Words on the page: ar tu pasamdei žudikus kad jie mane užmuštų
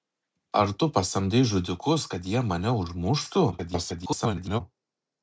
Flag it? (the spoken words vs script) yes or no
yes